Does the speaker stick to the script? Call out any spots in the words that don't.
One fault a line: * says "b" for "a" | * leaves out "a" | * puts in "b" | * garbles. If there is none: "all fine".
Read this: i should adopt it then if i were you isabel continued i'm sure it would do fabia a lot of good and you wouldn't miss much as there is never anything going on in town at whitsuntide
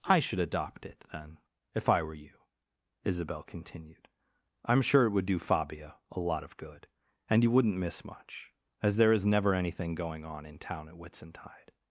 all fine